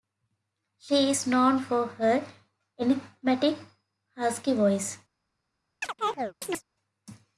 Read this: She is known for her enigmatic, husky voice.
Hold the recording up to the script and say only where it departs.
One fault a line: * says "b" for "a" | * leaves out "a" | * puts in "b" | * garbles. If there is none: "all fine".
all fine